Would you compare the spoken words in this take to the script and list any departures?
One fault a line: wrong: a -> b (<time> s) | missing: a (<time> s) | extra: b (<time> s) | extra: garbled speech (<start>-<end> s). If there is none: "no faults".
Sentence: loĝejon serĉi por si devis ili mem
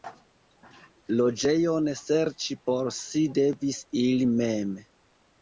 no faults